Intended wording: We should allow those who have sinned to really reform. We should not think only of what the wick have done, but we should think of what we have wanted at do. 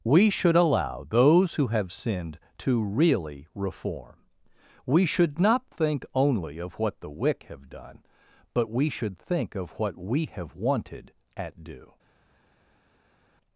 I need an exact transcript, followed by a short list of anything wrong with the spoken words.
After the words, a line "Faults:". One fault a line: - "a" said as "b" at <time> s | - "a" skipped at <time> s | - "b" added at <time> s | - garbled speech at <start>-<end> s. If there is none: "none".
We should allow those who have sinned to really reform. We should not think only of what the wick have done, but we should think of what we have wanted at do.
Faults:
none